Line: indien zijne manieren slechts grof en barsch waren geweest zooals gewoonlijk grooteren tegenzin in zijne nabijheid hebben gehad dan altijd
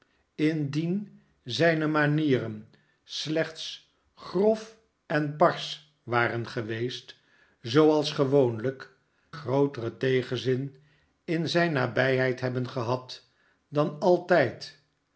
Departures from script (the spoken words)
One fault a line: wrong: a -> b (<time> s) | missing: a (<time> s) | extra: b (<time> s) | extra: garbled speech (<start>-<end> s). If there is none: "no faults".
no faults